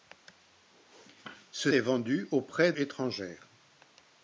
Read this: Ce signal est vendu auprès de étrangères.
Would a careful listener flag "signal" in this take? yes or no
yes